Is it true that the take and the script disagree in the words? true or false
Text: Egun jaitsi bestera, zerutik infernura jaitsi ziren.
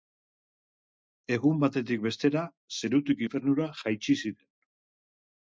true